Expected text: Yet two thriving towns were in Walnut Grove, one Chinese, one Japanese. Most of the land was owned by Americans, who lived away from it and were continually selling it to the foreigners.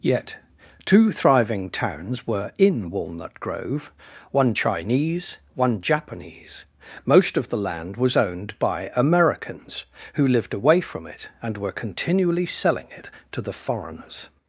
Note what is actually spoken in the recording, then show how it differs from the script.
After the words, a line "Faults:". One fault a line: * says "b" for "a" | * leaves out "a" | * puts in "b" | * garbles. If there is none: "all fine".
Yet two thriving towns were in Walnut Grove, one Chinese, one Japanese. Most of the land was owned by Americans, who lived away from it and were continually selling it to the foreigners.
Faults:
all fine